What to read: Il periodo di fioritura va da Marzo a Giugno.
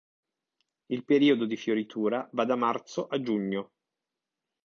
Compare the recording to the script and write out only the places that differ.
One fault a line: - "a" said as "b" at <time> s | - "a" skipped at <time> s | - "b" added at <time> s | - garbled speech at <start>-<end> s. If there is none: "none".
none